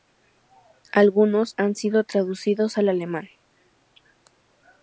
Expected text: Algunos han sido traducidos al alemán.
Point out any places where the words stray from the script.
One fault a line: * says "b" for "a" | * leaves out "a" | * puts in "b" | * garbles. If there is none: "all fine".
all fine